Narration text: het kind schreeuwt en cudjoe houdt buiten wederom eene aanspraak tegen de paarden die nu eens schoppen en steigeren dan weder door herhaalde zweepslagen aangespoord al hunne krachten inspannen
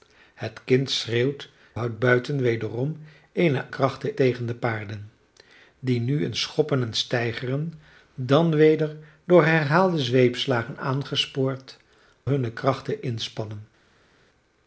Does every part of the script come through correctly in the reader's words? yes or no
no